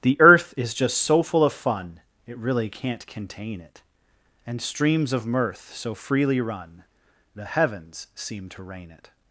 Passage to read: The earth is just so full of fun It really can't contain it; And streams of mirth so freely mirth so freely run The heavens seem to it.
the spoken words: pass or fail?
fail